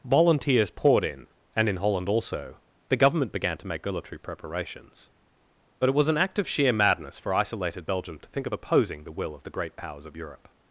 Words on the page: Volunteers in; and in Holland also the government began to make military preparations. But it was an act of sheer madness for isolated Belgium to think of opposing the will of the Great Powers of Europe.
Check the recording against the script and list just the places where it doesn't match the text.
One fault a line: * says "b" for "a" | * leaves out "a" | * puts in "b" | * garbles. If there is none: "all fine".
* puts in "poured"